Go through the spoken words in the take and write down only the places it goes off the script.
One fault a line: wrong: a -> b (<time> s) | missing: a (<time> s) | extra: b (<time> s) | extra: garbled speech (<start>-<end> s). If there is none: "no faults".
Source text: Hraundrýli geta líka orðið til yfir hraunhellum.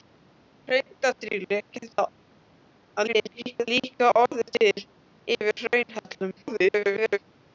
extra: garbled speech (3.1-3.7 s)
extra: garbled speech (6.4-7.2 s)